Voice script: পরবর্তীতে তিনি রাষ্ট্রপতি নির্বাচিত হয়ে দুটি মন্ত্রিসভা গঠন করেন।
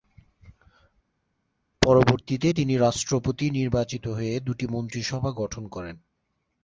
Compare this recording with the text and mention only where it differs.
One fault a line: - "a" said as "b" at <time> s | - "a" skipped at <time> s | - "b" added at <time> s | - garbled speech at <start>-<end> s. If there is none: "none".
none